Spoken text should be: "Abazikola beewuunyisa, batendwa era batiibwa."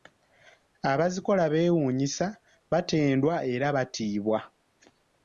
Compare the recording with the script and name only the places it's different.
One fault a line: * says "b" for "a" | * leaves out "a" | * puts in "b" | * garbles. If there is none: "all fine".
all fine